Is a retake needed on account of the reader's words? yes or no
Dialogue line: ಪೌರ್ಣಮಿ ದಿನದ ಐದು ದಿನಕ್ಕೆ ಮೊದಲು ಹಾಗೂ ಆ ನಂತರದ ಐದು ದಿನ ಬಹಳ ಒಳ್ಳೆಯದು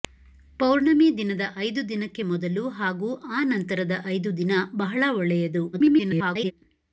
yes